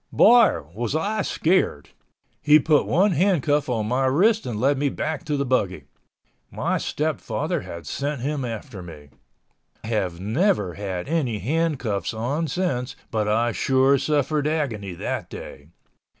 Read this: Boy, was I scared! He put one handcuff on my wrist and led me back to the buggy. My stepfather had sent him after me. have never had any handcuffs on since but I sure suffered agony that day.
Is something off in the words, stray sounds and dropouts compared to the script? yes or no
no